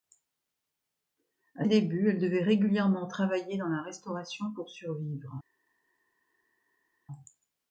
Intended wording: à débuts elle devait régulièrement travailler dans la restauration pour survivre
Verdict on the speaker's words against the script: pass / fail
pass